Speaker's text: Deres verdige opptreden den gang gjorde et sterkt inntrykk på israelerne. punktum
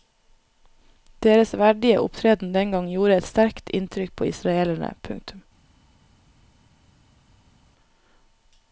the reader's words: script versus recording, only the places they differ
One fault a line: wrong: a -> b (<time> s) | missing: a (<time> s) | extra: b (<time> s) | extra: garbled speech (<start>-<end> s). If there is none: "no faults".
no faults